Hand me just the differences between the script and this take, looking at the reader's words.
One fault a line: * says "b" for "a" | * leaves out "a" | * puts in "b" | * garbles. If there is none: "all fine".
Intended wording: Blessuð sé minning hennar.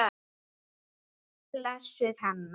* leaves out "sé minning"